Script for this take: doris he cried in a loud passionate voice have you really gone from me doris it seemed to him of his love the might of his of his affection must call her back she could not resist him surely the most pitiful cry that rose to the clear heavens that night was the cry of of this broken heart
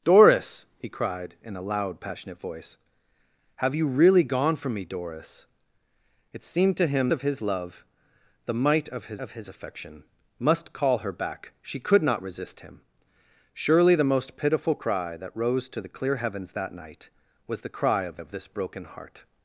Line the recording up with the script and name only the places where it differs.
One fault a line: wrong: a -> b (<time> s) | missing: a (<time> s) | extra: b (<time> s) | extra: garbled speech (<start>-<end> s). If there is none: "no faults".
no faults